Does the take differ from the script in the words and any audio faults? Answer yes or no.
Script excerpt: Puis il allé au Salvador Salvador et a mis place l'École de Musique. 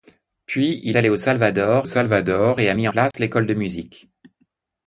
yes